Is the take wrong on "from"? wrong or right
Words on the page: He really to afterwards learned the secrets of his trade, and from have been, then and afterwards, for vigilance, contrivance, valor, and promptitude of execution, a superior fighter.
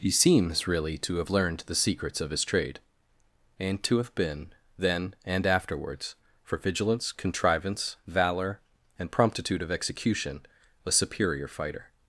wrong